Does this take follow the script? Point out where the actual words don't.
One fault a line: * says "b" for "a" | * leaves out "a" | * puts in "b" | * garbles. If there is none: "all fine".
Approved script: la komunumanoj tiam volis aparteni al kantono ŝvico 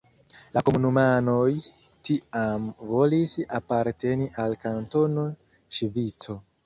all fine